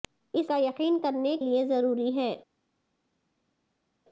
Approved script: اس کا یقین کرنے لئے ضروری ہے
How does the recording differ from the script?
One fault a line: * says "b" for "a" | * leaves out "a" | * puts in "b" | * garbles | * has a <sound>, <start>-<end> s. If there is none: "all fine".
all fine